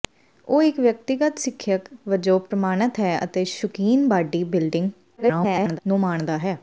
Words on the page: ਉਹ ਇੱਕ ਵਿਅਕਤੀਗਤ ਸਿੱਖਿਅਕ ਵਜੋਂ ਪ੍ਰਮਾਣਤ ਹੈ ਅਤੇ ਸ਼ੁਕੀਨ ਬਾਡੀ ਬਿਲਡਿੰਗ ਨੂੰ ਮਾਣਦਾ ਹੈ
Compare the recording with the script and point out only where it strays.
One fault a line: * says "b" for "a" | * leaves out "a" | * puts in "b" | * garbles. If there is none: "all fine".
* garbles